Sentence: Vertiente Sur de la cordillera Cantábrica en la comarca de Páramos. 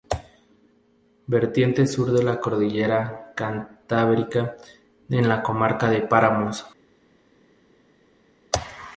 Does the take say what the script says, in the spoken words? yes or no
yes